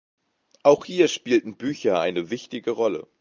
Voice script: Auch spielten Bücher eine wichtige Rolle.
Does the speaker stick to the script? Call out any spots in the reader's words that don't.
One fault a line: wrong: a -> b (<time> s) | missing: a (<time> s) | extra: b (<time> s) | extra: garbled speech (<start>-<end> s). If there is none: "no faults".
extra: hier (0.8 s)